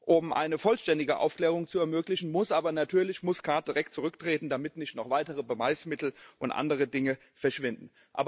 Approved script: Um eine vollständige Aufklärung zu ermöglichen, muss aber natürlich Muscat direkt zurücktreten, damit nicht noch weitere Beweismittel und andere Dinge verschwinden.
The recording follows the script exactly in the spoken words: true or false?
true